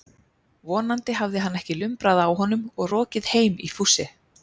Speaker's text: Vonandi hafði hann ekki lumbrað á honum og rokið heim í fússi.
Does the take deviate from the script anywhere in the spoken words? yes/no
no